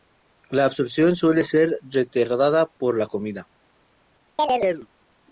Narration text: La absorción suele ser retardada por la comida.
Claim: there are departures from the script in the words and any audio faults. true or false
true